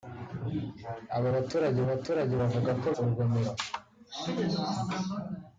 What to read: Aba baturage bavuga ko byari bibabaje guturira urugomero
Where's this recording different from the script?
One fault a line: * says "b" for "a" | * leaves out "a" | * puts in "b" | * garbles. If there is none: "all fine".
* puts in "baturage"
* leaves out "byari bibabaje guturira"